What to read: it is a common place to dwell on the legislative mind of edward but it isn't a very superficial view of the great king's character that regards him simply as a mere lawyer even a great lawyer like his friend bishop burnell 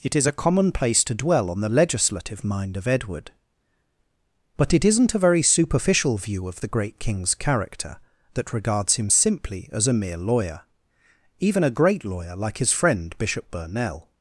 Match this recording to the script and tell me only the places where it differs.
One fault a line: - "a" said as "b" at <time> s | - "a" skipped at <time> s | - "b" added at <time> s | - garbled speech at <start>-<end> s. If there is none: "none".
none